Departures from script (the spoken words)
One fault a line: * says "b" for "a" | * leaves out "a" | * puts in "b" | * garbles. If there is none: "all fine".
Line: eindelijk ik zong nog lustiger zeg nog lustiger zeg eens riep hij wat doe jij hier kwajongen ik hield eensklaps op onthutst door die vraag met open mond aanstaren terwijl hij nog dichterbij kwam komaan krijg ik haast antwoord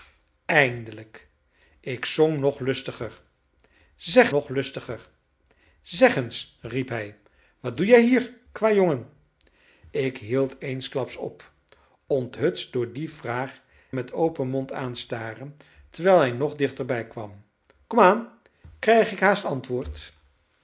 all fine